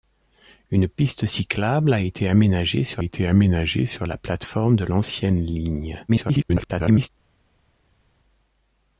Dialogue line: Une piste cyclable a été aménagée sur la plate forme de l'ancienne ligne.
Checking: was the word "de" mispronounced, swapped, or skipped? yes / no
no